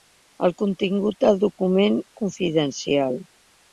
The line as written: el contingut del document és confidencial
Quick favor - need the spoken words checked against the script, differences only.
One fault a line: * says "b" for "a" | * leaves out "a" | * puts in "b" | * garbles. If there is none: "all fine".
* leaves out "és"